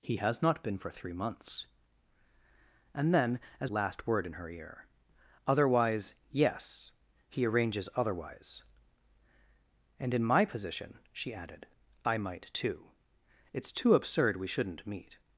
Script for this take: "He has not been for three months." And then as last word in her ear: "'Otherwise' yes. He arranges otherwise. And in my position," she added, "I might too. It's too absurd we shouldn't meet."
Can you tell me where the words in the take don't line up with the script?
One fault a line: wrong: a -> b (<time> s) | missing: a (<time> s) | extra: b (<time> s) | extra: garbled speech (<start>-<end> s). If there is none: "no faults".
no faults